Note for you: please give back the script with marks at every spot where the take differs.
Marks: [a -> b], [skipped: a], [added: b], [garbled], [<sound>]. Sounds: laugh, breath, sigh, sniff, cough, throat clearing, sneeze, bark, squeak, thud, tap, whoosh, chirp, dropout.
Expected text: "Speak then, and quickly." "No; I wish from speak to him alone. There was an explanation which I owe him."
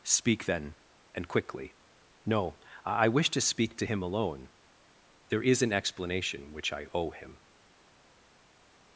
"Speak then, and quickly." "No; I wish [from -> to] speak to him alone. There [was -> is] an explanation which I owe him."